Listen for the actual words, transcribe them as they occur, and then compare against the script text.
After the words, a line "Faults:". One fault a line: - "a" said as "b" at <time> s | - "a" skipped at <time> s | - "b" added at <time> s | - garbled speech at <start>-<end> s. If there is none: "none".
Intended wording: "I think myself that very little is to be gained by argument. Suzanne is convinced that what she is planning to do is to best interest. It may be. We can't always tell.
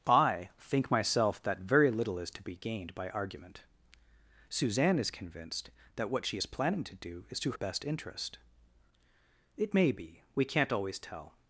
"I think myself that very little is to be gained by argument. Suzanne is convinced that what she is planning to do is to best interest. It may be. We can't always tell.
Faults:
none